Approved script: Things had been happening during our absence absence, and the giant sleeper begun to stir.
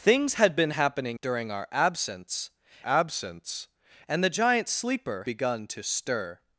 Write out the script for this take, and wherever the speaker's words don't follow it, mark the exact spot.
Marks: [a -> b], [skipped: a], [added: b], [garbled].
Things had been happening during our absence absence, and the giant sleeper begun to stir.